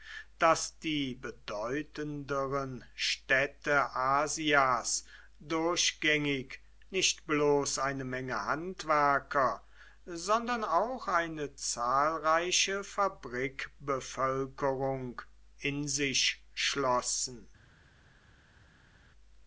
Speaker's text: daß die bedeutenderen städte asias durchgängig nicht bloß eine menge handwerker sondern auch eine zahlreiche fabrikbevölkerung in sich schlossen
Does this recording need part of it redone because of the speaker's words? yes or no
no